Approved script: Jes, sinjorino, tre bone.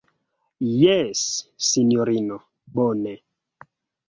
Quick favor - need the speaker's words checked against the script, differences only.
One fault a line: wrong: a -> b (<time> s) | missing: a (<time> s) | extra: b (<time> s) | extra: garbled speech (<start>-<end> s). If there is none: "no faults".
missing: tre (2.4 s)